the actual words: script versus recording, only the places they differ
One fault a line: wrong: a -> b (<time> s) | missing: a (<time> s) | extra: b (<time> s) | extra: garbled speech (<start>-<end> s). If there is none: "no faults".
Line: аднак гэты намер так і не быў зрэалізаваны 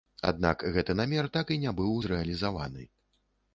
no faults